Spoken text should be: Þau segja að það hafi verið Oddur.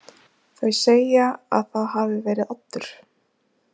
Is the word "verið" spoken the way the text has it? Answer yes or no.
yes